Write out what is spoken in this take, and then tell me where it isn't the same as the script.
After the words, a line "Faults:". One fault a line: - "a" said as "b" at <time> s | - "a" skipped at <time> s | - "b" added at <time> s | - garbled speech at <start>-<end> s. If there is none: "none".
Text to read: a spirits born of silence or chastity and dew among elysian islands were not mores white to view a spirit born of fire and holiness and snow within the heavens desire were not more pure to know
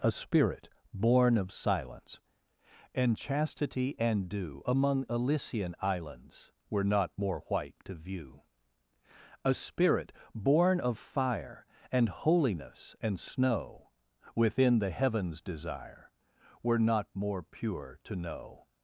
a spirit born of silence and chastity and dew among elysian islands were not more white to view a spirit born of fire and holiness and snow within the heavens desire were not more pure to know
Faults:
- "spirits" said as "spirit" at 0.1 s
- "or" said as "and" at 3.0 s
- "mores" said as "more" at 7.2 s